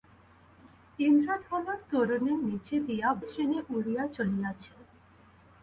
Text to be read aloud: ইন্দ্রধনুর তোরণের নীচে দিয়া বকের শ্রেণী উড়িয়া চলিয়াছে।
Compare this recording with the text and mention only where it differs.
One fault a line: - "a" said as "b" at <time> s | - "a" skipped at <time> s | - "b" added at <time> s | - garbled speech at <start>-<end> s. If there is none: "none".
- "বকের" skipped at 3.1 s